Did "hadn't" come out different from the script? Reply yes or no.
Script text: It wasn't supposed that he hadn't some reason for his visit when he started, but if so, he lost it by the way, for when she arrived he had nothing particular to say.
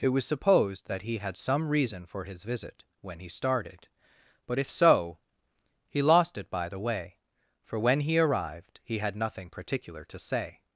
yes